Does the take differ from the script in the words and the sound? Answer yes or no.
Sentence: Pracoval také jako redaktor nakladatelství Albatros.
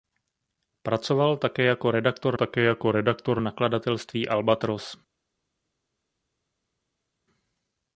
yes